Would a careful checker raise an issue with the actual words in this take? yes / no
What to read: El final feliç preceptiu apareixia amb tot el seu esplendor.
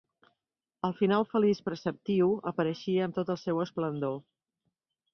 no